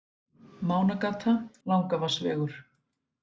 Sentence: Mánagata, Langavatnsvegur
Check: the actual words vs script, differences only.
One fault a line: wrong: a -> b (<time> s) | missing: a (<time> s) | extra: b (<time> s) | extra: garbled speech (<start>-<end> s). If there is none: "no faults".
no faults